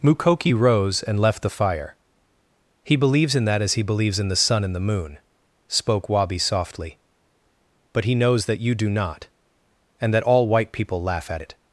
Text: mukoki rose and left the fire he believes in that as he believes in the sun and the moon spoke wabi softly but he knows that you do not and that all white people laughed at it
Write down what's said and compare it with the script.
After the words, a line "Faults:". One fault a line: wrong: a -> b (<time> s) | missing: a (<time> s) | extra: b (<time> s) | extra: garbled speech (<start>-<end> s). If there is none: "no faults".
mukoki rose and left the fire he believes in that as he believes in the sun and the moon spoke wabi softly but he knows that you do not and that all white people laugh at it
Faults:
wrong: laughed -> laugh (11.0 s)